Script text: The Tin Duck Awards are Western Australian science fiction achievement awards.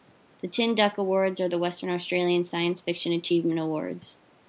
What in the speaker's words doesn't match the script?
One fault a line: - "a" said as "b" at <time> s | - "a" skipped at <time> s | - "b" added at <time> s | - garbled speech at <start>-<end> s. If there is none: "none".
- "the" added at 1.5 s